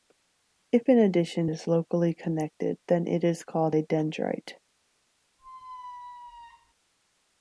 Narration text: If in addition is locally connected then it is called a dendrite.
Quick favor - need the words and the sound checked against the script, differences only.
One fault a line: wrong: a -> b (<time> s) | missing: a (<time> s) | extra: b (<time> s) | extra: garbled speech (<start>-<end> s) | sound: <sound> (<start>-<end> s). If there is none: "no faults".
sound: squeak (5.4-6.7 s)